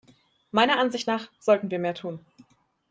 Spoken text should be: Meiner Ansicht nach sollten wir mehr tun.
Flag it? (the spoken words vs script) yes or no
no